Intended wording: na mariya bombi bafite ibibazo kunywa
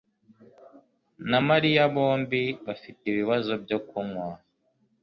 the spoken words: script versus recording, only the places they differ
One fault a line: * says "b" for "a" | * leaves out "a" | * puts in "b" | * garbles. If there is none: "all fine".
* puts in "byo"